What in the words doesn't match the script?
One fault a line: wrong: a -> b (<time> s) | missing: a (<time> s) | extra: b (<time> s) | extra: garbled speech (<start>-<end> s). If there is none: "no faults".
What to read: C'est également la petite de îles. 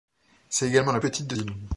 no faults